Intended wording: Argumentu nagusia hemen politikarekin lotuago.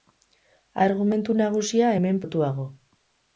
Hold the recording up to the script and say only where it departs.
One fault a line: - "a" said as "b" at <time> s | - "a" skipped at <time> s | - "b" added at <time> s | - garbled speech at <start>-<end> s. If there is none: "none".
- "politikarekin" skipped at 2.2 s